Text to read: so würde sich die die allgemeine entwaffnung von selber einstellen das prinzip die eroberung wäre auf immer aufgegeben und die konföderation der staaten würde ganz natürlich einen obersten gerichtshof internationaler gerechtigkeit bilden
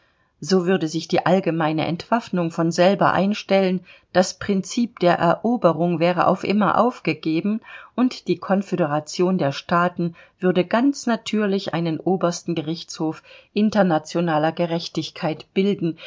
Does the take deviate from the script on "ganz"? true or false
false